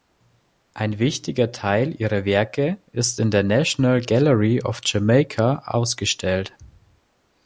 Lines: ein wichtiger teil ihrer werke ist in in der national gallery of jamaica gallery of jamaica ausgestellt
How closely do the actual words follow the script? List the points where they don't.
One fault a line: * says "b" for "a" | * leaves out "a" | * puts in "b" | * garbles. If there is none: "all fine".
* leaves out "in"
* leaves out "gallery of jamaica"